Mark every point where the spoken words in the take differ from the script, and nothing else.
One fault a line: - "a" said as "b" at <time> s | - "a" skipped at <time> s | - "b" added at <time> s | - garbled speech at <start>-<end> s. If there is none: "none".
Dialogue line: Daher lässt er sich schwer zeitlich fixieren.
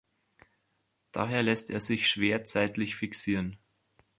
none